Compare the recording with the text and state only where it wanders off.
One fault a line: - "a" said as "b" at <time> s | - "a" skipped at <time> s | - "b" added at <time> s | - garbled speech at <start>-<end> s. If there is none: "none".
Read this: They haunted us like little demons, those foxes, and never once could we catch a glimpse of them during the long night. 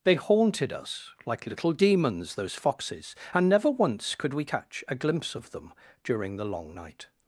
none